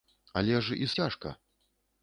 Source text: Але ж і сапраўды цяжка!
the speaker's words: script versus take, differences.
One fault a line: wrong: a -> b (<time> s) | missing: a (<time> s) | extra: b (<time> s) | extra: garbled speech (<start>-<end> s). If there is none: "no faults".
missing: сапраўды (0.9 s)